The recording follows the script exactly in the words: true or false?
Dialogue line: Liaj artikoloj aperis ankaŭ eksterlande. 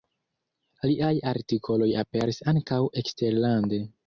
true